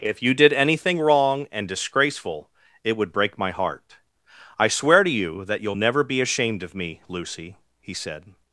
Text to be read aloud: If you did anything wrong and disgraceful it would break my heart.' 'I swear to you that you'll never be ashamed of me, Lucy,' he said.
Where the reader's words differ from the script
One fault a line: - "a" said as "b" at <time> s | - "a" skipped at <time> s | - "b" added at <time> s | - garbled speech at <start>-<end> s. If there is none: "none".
none